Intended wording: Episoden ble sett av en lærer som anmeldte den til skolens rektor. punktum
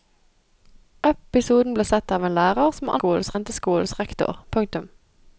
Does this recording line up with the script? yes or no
no